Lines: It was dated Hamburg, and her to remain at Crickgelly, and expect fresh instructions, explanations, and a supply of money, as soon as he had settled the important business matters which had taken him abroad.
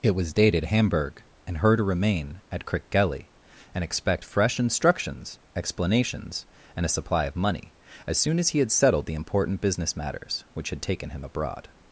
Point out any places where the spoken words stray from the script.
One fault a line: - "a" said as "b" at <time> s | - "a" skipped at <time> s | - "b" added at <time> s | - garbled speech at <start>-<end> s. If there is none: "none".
none